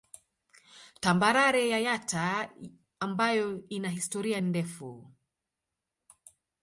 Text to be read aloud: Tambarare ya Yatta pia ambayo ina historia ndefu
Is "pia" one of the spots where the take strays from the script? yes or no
yes